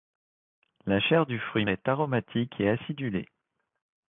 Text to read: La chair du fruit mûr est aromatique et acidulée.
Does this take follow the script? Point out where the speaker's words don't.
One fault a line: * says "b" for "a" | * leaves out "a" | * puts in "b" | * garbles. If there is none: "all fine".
* leaves out "mûr"